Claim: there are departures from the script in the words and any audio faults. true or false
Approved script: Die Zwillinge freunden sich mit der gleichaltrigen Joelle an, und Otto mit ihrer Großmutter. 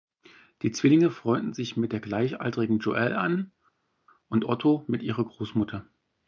false